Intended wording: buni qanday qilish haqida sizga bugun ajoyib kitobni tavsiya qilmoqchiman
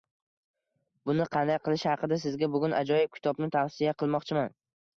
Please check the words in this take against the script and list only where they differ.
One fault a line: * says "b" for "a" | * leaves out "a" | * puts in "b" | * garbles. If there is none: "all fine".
all fine